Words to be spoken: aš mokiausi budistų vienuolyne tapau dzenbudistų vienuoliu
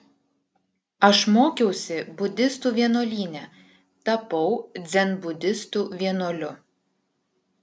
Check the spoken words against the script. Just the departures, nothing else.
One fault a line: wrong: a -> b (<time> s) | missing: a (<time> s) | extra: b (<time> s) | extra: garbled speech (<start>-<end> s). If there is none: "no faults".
no faults